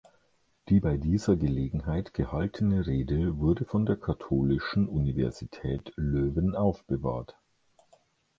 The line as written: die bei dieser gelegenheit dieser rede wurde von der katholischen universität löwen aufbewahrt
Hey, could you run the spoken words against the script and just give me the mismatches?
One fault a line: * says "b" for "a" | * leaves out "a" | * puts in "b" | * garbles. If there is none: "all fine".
* says "gehaltene" for "dieser"